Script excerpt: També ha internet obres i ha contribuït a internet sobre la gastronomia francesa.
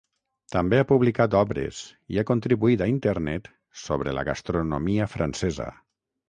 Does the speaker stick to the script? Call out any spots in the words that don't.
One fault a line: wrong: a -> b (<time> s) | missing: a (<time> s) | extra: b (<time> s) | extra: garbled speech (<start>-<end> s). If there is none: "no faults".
wrong: internet -> publicat (0.9 s)